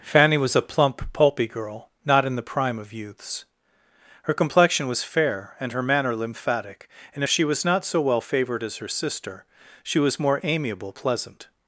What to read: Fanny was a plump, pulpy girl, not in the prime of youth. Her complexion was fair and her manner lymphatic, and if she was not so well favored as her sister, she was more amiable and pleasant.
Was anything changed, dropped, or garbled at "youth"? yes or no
yes